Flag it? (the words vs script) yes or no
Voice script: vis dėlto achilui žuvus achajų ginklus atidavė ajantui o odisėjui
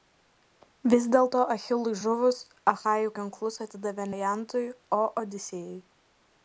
no